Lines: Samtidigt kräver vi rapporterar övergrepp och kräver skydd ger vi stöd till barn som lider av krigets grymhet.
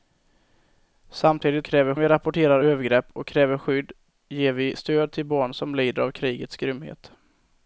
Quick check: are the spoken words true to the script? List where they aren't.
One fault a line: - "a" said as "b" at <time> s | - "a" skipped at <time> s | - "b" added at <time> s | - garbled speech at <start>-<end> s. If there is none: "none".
none